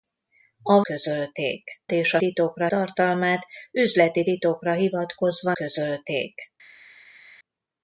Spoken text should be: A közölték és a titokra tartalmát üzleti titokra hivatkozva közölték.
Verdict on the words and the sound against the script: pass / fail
pass